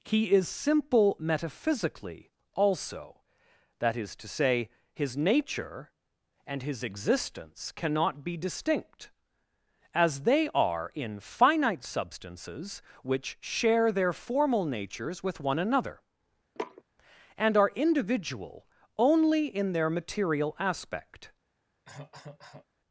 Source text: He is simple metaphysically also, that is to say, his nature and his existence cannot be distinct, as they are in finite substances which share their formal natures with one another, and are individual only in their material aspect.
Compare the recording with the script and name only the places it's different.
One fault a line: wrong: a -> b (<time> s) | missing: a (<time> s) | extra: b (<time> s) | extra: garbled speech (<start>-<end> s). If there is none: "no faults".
no faults